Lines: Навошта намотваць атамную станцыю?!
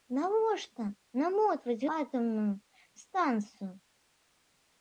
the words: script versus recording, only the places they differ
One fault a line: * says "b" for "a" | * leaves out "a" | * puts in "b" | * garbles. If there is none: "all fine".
all fine